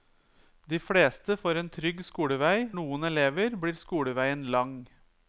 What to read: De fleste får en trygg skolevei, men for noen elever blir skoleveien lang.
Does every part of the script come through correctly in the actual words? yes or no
no